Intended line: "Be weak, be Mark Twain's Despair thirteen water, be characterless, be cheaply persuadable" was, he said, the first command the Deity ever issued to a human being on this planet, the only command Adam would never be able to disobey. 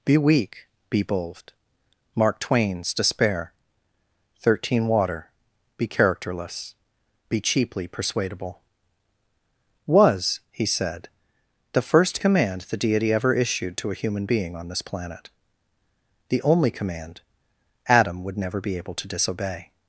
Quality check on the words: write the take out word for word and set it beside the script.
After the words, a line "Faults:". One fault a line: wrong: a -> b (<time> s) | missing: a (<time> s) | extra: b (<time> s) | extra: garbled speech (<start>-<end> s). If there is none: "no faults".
"Be weak, be bold Mark Twain's Despair thirteen water, be characterless, be cheaply persuadable" was, he said, the first command the Deity ever issued to a human being on this planet, the only command Adam would never be able to disobey.
Faults:
extra: bold (1.0 s)